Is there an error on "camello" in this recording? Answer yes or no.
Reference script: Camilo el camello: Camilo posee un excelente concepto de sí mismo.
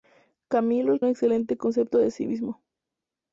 yes